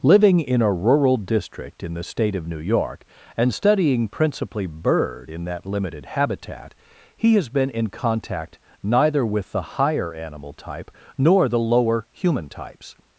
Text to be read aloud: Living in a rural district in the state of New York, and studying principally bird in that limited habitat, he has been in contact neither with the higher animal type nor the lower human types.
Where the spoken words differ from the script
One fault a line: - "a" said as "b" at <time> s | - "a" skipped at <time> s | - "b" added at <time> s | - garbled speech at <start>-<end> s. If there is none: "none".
none